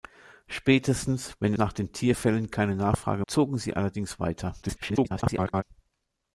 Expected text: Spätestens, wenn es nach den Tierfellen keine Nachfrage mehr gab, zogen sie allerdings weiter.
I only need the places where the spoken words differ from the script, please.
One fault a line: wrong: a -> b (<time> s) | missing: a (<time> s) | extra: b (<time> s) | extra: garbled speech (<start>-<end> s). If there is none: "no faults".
missing: es (1.5 s)
missing: mehr gab (3.2 s)
extra: garbled speech (4.6-5.6 s)